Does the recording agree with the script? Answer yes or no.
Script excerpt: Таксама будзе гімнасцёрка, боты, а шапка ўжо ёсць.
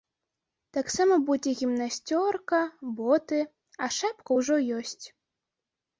yes